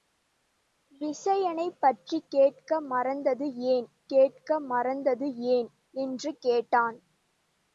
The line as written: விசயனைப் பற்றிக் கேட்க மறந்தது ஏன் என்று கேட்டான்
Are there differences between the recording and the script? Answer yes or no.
yes